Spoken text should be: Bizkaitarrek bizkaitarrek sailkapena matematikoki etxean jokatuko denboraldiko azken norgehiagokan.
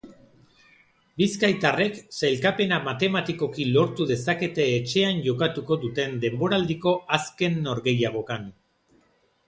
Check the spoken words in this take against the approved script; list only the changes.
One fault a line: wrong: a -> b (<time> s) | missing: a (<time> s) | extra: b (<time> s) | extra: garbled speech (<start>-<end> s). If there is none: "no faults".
missing: bizkaitarrek (2.0 s)
extra: lortu dezakete (3.8 s)
extra: duten (5.9 s)